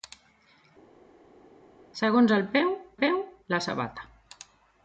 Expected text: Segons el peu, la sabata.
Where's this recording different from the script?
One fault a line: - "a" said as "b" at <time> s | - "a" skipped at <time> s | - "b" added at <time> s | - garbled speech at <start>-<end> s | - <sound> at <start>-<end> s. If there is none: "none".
- "peu" added at 3.0 s